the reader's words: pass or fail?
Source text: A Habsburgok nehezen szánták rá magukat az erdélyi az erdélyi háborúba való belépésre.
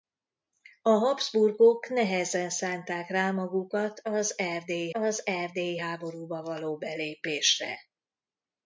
pass